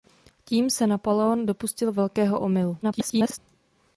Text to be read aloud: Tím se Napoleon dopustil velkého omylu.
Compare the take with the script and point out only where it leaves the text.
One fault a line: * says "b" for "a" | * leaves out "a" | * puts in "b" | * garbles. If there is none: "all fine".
* garbles